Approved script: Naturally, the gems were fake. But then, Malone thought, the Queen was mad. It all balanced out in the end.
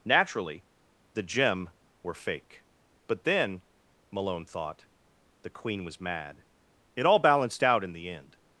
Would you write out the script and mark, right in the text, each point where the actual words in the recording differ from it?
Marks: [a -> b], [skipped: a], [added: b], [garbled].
Naturally, the [gems -> gem] were fake. But then, Malone thought, the Queen was mad. It all balanced out in the end.